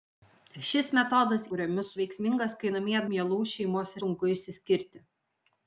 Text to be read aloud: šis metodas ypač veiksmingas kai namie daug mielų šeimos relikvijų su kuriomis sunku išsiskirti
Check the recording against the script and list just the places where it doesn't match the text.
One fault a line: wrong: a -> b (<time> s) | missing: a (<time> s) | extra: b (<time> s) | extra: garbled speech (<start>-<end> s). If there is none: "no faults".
wrong: ypač -> kuriomis (1.5 s)
missing: daug (3.0 s)
missing: relikvijų su kuriomis (3.9 s)